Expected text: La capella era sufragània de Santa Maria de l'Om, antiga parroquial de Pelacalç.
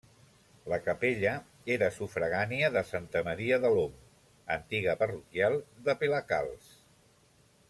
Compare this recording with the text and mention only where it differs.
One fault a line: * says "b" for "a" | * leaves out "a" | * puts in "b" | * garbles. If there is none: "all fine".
all fine